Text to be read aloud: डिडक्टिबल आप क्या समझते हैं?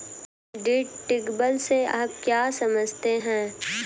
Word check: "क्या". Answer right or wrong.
right